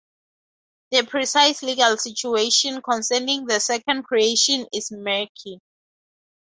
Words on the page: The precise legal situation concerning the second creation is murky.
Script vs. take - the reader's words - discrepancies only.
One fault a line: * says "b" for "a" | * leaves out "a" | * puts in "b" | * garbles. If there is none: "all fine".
all fine